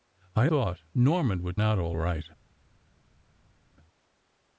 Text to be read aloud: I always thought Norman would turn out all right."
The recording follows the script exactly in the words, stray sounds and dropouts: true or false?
false